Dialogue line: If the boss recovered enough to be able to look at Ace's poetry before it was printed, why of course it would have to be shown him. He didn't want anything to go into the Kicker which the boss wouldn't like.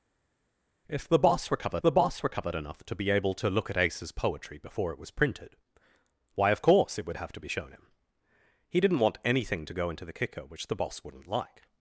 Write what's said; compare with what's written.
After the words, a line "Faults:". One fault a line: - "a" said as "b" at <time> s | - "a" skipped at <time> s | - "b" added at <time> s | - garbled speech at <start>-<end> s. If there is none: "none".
If the boss recovered the boss recovered enough to be able to look at Ace's poetry before it was printed, why of course it would have to be shown him. He didn't want anything to go into the Kicker which the boss wouldn't like.
Faults:
- "the boss recovered" added at 1.8 s